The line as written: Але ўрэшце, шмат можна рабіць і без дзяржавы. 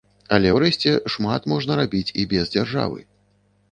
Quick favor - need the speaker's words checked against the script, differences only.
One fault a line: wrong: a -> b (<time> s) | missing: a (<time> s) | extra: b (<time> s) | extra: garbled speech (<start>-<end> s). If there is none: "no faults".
no faults